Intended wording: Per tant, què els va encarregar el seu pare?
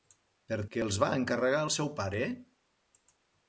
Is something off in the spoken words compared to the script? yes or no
yes